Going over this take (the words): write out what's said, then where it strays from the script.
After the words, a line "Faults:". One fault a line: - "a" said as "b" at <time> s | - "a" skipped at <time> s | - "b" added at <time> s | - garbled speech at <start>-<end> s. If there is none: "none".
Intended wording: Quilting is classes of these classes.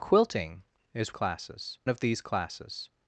Quilting is classes of these classes.
Faults:
none